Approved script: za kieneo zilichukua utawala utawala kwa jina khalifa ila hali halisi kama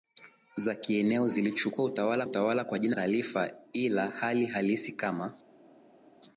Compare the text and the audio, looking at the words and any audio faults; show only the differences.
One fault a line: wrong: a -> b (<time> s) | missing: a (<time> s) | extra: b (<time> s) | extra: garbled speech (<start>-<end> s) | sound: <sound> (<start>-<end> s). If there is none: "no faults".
no faults